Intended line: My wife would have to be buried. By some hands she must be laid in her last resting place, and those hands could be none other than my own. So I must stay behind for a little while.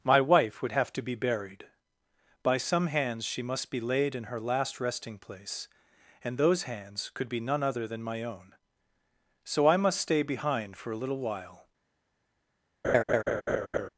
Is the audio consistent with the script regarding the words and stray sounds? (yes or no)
no